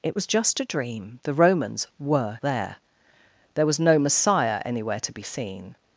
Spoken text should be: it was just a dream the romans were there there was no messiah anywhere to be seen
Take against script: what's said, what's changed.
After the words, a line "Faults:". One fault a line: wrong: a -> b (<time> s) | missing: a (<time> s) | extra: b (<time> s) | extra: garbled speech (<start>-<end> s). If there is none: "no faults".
it was just a dream the romans were there there was no messiah anywhere to be seen
Faults:
no faults